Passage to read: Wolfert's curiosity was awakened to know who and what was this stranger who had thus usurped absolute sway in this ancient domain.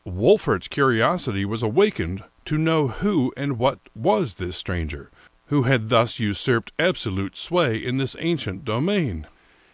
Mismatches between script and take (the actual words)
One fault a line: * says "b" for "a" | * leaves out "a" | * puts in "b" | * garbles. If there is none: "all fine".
all fine